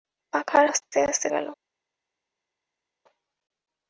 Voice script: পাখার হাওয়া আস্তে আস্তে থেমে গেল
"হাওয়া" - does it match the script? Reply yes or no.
no